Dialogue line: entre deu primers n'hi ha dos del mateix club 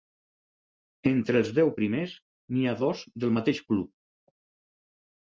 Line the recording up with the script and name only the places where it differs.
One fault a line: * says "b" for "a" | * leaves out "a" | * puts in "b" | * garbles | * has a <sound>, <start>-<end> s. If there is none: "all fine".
* puts in "els"